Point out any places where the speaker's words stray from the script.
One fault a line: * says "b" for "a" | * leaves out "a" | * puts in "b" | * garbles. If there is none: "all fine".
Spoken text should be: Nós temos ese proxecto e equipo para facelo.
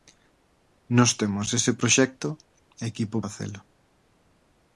* leaves out "para"